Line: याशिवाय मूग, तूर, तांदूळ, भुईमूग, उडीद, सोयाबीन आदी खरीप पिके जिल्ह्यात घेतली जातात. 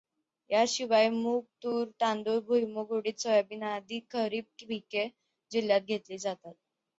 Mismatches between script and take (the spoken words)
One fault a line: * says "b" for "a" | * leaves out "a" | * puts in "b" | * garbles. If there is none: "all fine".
all fine